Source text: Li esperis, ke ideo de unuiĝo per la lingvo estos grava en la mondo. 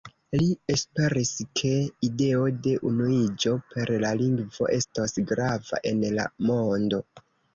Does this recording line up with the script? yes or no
yes